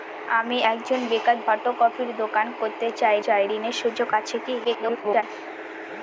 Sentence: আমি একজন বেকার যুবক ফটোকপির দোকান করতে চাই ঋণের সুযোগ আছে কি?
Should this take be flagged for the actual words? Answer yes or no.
yes